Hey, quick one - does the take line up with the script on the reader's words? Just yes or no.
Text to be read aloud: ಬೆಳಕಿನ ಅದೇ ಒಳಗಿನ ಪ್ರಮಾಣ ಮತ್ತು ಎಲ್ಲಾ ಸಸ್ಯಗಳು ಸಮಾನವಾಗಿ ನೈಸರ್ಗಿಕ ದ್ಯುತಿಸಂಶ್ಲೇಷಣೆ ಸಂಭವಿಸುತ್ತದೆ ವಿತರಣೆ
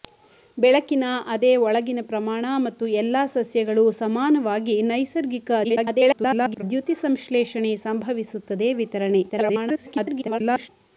no